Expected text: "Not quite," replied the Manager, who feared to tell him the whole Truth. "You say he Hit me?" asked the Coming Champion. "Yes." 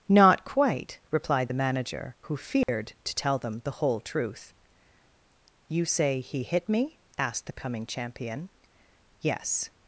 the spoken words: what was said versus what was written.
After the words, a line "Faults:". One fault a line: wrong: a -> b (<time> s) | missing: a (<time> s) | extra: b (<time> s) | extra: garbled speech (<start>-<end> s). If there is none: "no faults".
"Not quite," replied the Manager, who feared to tell them the whole Truth. "You say he Hit me?" asked the Coming Champion. "Yes."
Faults:
wrong: him -> them (3.4 s)